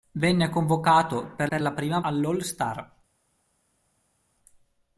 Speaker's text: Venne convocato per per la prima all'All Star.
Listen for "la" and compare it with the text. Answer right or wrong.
right